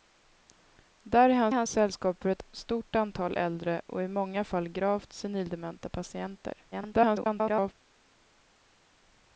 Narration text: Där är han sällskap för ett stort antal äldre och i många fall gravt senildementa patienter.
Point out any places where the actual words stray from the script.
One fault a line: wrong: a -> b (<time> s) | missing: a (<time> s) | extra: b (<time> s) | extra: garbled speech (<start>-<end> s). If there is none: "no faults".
extra: han (1.5 s)
extra: garbled speech (6.7-7.7 s)